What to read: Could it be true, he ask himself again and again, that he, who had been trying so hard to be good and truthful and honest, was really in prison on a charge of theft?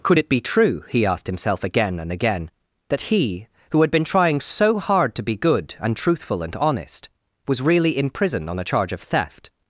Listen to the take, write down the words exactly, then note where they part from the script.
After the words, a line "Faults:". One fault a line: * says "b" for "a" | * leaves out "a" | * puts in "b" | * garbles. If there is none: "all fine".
Could it be true, he asked himself again and again, that he, who had been trying so hard to be good and truthful and honest, was really in prison on a charge of theft?
Faults:
* says "asked" for "ask"